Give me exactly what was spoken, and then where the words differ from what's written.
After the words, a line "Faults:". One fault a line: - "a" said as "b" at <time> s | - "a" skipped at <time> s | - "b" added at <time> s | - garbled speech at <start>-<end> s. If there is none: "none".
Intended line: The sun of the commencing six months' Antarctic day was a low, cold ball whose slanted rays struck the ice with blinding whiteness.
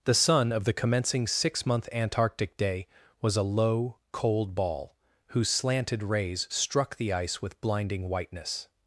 The sun of the commencing six month' Antarctic day was a low, cold ball whose slanted rays struck the ice with blinding whiteness.
Faults:
- "months" said as "month" at 1.7 s